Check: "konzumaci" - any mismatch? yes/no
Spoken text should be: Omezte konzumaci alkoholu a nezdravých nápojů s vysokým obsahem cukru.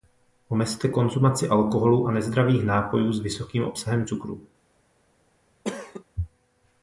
no